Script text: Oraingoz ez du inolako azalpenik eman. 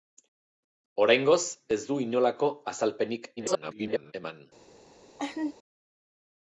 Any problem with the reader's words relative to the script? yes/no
yes